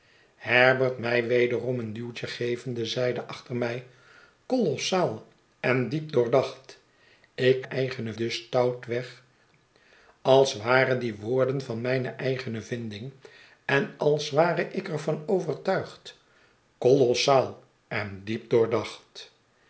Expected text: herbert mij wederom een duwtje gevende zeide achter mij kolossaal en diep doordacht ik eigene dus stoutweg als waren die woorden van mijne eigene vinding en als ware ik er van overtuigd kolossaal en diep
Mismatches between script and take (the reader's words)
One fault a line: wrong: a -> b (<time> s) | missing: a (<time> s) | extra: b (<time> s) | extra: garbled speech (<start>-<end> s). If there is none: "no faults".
no faults